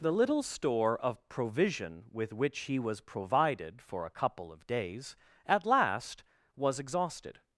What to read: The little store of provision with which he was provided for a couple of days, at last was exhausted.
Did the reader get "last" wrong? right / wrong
right